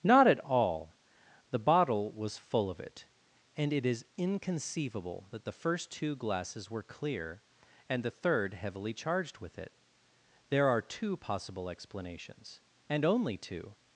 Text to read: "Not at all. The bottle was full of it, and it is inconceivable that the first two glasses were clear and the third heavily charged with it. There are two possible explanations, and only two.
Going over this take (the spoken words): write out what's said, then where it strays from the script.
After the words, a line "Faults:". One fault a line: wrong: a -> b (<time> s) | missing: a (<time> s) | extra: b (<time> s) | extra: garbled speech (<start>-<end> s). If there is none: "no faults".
"Not at all. The bottle was full of it, and it is inconceivable that the first two glasses were clear and the third heavily charged with it. There are two possible explanations, and only two.
Faults:
no faults